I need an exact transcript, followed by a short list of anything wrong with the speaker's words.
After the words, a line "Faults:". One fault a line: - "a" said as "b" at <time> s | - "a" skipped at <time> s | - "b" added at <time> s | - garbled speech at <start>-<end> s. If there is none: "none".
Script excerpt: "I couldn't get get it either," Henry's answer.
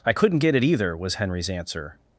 "I couldn't get it either," was Henry's answer.
Faults:
- "get" skipped at 0.6 s
- "was" added at 1.0 s